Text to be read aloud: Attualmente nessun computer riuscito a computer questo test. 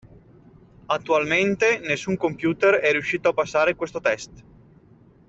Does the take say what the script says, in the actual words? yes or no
no